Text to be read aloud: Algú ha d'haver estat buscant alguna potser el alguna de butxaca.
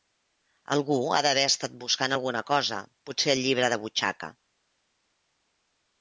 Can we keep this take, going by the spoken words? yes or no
no